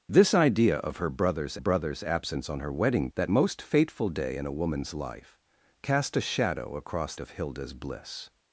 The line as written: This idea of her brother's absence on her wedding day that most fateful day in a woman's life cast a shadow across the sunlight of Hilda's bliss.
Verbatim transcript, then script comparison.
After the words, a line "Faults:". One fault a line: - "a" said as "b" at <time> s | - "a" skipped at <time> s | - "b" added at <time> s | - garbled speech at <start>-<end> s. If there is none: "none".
This idea of her brother's brother's absence on her wedding that most fateful day in a woman's life cast a shadow across of Hilda's bliss.
Faults:
- "brother's" added at 1.6 s
- "day" skipped at 3.1 s
- "the sunlight" skipped at 7.2 s